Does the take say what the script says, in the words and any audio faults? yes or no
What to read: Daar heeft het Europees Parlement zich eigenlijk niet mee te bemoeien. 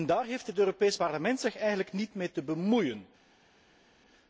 yes